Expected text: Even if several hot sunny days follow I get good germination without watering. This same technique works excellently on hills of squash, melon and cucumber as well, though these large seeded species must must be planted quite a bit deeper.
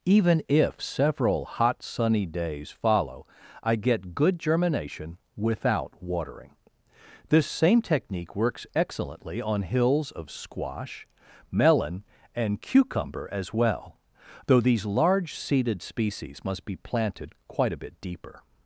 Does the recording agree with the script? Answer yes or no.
no